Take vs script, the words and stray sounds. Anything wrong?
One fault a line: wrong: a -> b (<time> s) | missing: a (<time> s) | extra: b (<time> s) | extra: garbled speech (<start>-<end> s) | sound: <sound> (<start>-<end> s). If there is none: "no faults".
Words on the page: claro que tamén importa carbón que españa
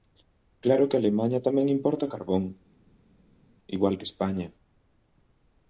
extra: alemaña (1.0 s)
extra: igual (3.8 s)